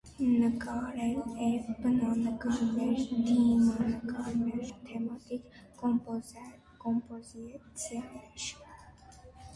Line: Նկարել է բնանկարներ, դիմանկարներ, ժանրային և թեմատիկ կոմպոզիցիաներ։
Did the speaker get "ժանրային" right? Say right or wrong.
wrong